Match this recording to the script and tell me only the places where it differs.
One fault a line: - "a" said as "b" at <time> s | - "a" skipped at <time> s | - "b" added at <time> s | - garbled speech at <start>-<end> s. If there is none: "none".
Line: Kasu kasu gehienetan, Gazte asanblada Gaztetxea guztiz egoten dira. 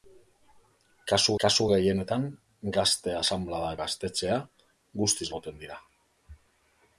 none